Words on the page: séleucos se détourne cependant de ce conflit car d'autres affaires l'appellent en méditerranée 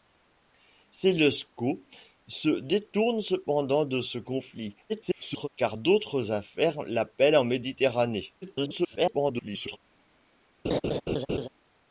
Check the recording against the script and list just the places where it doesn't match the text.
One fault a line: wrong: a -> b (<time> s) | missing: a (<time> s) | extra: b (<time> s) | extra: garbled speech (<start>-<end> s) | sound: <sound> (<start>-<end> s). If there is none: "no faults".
extra: garbled speech (4.9-5.5 s)
extra: garbled speech (8.4-9.8 s)
sound: laugh (10.6-11.5 s)